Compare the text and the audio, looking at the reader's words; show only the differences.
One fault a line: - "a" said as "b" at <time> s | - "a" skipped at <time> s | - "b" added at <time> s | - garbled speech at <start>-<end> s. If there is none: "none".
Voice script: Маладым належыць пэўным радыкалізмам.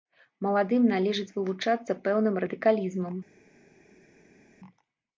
- "вылучацца" added at 1.4 s